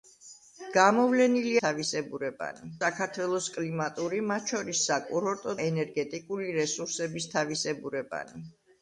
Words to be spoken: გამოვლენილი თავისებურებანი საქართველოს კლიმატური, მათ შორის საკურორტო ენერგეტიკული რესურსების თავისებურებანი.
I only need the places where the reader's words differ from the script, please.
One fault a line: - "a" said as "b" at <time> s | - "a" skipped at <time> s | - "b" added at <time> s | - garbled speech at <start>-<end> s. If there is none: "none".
none